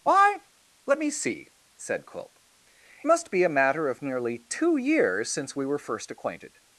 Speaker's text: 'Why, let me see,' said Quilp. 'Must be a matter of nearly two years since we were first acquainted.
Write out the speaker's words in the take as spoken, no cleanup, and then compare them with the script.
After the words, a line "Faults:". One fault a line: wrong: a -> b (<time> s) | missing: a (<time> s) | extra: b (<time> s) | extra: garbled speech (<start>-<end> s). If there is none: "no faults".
'Why, let me see,' said Quilp. 'Must be a matter of nearly two years since we were first acquainted.
Faults:
no faults